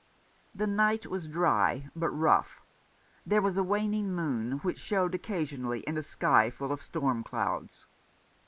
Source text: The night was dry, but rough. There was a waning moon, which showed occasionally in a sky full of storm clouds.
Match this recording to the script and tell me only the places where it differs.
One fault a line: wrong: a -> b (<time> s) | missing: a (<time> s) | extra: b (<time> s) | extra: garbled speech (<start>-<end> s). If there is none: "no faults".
no faults